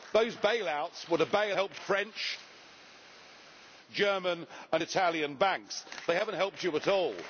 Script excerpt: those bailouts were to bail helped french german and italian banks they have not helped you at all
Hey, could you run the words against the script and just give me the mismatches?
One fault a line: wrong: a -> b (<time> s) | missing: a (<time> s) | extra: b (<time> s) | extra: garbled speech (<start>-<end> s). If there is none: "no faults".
no faults